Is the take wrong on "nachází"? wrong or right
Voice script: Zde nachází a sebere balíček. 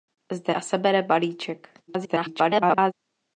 wrong